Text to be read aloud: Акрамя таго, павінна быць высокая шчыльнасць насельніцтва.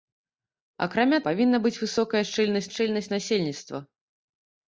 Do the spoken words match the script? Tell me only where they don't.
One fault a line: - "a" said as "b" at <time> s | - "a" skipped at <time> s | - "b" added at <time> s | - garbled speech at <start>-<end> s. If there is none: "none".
- "таго" skipped at 1.2 s
- "шчыльнасць" added at 2.7 s